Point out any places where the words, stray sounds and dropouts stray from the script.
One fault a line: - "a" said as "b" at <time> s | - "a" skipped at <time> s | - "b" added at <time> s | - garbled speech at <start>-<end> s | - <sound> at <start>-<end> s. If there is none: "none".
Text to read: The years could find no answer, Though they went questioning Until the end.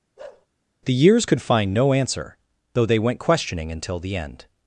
- bark at 0.2-0.5 s